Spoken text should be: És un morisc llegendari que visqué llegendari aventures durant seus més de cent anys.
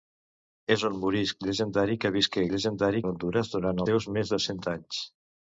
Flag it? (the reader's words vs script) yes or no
no